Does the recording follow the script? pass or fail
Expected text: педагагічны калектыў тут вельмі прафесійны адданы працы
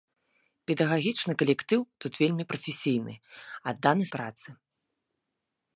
pass